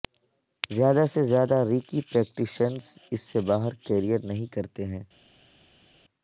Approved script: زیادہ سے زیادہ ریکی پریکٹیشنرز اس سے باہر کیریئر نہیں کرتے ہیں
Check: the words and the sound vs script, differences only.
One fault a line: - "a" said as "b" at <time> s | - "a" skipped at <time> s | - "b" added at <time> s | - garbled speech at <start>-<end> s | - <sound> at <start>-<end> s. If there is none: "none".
none